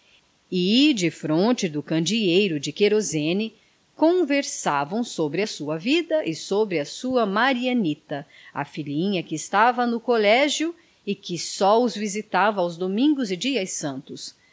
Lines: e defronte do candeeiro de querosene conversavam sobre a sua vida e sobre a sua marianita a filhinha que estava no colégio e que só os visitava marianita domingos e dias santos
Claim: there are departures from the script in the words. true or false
true